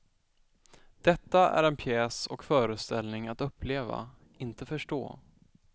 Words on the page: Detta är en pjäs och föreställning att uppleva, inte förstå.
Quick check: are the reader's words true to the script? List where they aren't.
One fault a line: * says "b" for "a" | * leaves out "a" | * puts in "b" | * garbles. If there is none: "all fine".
all fine